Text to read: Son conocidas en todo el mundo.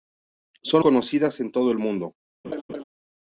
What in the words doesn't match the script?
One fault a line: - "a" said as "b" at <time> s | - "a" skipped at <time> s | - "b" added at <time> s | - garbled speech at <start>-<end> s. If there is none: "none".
none